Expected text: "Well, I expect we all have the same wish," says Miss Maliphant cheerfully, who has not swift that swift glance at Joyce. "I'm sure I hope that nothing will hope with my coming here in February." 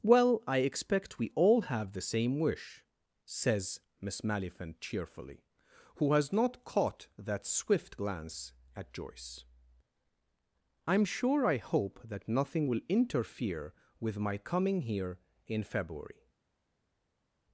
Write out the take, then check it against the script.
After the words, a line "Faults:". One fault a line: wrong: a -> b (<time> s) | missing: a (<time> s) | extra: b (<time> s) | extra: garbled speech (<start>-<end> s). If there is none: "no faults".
"Well, I expect we all have the same wish," says Miss Maliphant cheerfully, who has not caught that swift glance at Joyce. "I'm sure I hope that nothing will interfere with my coming here in February."
Faults:
wrong: swift -> caught (6.6 s)
wrong: hope -> interfere (12.9 s)